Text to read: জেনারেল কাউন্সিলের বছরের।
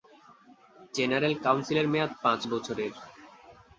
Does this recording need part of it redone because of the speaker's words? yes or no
yes